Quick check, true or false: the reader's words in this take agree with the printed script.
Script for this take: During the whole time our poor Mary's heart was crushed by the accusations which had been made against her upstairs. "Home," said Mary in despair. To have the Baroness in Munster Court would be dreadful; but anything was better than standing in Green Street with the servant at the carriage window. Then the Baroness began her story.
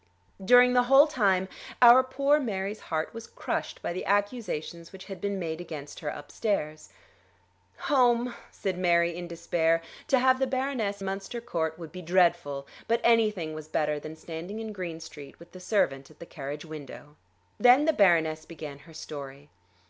false